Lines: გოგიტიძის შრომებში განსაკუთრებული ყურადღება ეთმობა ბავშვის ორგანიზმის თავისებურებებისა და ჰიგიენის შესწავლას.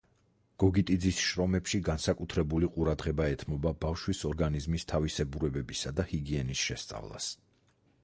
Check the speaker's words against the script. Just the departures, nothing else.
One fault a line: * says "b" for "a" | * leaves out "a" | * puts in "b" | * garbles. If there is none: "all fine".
all fine